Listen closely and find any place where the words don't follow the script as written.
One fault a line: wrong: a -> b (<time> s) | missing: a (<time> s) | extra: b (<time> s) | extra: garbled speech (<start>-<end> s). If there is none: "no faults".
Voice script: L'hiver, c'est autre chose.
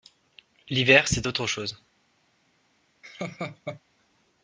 no faults